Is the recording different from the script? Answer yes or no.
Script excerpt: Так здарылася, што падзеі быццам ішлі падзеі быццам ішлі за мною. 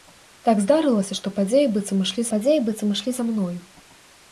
no